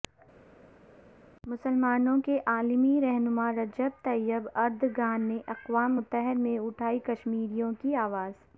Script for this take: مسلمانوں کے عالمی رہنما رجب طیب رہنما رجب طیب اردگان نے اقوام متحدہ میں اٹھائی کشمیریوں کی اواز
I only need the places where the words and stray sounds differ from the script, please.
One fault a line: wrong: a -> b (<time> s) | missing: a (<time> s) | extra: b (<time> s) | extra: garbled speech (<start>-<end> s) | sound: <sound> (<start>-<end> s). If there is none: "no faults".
missing: رہنما رجب طیب (4.5 s)